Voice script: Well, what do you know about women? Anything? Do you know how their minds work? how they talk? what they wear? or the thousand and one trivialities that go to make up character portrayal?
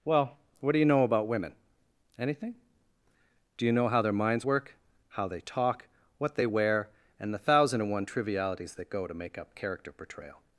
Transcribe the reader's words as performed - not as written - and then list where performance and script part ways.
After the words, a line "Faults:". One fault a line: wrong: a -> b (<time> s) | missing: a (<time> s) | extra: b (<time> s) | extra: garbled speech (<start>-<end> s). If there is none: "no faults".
Well, what do you know about women? Anything? Do you know how their minds work? how they talk? what they wear? and the thousand and one trivialities that go to make up character portrayal?
Faults:
wrong: or -> and (7.2 s)